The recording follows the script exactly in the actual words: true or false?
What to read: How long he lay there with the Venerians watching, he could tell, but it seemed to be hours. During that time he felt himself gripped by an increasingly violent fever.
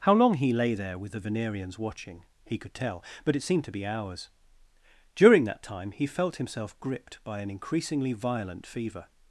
true